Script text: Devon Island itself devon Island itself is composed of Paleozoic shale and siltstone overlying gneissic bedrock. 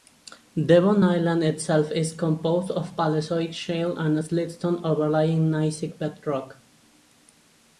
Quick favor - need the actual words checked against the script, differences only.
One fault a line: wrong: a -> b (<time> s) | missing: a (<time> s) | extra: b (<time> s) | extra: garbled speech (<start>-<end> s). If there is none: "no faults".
missing: devon Island itself (1.9 s)